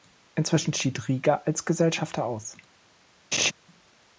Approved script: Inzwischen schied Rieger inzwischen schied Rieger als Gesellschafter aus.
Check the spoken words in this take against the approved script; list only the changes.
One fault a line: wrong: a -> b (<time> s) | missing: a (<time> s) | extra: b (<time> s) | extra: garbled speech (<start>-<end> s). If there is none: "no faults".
missing: inzwischen schied Rieger (1.4 s)